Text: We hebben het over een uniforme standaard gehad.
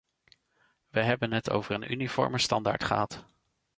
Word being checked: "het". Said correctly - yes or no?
yes